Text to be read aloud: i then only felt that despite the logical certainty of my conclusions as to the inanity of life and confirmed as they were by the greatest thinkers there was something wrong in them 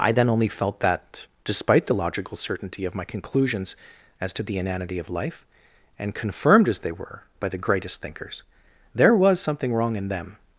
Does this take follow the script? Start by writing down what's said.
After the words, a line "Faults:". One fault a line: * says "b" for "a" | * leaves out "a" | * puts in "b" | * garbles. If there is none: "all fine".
i then only felt that despite the logical certainty of my conclusions as to the inanity of life and confirmed as they were by the greatest thinkers there was something wrong in them
Faults:
all fine